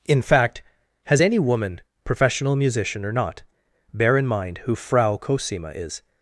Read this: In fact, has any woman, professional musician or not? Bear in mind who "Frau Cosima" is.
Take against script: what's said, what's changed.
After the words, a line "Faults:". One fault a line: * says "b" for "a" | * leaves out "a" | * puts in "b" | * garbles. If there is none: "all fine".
In fact, has any woman, professional musician or not? Bear in mind who "Frau Cosima" is.
Faults:
all fine